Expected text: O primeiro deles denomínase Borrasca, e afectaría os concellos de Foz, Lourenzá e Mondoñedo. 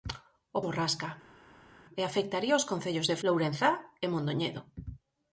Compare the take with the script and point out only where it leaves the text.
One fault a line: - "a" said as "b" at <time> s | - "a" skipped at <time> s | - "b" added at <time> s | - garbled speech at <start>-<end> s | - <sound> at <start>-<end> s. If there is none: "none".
- "primeiro deles denomínase" skipped at 0.6 s
- "Foz" skipped at 3.2 s